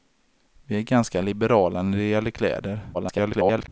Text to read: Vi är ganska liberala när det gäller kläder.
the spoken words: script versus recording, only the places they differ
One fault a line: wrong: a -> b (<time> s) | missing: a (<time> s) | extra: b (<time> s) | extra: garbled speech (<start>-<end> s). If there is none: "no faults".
extra: garbled speech (2.9-3.7 s)